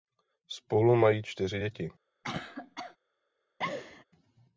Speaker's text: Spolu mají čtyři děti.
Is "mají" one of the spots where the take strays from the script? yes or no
no